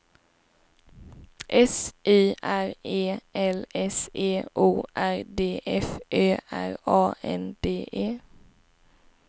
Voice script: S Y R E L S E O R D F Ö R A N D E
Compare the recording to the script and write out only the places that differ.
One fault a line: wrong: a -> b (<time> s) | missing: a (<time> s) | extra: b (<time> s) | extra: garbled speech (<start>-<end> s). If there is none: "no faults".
no faults